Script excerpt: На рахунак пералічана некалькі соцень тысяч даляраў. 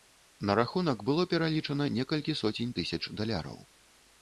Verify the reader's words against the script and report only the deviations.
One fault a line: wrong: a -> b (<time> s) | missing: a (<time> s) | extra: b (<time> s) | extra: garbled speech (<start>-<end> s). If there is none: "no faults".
extra: было (1.1 s)